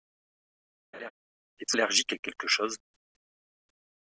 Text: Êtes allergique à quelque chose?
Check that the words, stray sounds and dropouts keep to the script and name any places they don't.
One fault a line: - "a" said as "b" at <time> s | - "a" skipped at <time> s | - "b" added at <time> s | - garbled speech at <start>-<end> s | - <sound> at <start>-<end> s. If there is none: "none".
- laugh at 0.9-1.1 s